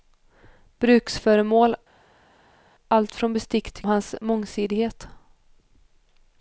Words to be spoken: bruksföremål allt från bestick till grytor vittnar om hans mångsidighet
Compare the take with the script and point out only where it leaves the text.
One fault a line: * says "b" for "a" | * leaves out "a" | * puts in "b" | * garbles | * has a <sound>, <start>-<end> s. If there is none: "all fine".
* leaves out "grytor vittnar om"